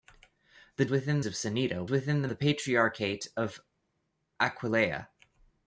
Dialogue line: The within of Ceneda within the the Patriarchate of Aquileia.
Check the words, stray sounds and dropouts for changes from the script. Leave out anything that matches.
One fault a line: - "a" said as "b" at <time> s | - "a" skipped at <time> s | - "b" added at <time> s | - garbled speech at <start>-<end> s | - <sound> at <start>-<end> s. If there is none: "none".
none